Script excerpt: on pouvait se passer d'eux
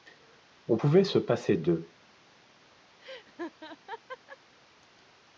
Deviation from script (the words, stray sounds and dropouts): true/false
true